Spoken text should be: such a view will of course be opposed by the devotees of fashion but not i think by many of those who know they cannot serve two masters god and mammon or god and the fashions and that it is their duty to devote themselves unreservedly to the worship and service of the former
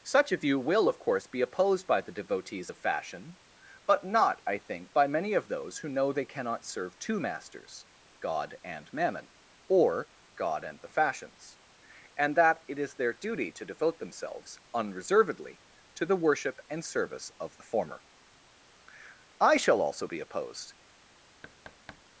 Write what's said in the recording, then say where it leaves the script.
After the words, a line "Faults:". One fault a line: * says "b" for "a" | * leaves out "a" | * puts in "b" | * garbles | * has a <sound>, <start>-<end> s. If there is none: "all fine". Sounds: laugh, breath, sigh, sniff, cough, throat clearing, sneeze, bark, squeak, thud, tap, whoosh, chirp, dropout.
such a view will of course be opposed by the devotees of fashion but not i think by many of those who know they cannot serve two masters god and mammon or god and the fashions and that it is their duty to devote themselves unreservedly to the worship and service of the former i shall also be opposed
Faults:
* puts in "i shall also be opposed"
* has a thud, 21.4-22.0 s